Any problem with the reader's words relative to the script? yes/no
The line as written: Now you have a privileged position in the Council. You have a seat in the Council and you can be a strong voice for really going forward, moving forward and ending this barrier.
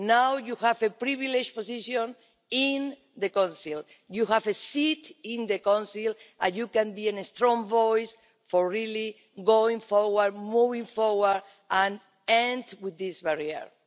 no